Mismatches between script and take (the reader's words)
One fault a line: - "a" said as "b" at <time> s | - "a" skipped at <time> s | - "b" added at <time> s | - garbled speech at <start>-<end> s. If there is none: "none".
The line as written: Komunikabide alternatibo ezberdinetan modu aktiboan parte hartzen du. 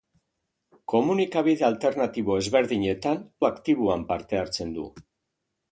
- "modu" skipped at 3.2 s